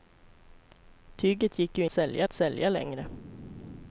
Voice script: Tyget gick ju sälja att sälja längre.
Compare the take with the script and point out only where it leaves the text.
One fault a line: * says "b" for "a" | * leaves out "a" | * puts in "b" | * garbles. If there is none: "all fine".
all fine